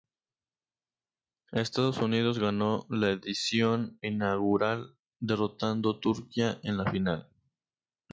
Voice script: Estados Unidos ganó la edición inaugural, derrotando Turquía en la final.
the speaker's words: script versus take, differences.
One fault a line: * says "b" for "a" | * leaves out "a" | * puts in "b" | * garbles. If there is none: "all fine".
all fine